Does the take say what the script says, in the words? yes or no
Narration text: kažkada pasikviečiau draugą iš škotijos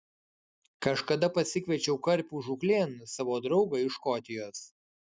no